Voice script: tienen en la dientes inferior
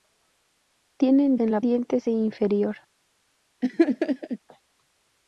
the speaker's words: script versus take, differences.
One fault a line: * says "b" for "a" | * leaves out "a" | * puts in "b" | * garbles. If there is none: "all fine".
all fine